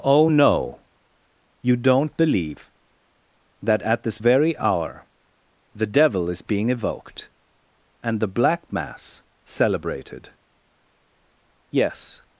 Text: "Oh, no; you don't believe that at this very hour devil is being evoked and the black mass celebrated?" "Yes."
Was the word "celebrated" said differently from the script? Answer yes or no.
no